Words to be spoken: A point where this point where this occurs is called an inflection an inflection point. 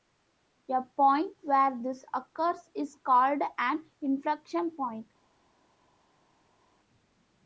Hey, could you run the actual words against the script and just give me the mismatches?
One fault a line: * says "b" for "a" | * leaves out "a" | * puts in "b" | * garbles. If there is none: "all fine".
* leaves out "point where this"
* leaves out "an inflection"